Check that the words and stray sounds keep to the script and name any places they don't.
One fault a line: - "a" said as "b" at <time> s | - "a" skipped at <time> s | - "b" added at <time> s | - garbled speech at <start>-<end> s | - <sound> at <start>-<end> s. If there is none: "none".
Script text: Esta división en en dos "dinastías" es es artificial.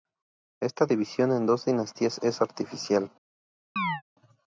- "en" skipped at 1.5 s
- "es" skipped at 2.4 s
- chirp at 3.8-4.0 s